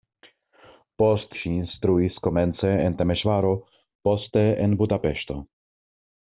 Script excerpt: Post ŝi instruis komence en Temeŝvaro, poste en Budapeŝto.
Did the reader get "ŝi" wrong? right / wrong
right